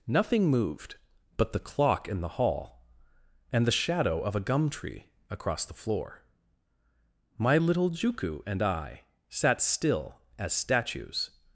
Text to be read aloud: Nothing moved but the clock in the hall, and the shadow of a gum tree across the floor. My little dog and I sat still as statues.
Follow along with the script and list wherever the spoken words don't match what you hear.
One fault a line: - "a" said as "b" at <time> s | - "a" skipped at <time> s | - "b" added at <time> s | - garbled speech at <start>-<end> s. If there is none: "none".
- "dog" said as "juku" at 7.9 s